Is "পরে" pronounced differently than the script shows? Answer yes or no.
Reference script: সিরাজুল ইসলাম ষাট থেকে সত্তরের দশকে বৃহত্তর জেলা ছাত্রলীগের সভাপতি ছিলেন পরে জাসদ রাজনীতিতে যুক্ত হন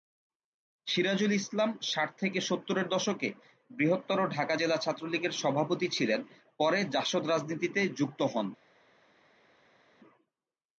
no